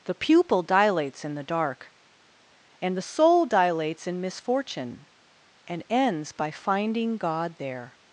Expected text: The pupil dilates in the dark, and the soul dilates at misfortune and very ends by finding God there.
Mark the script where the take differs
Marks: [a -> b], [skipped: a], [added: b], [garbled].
The pupil dilates in the dark, and the soul dilates [at -> in] misfortune and [skipped: very] ends by finding God there.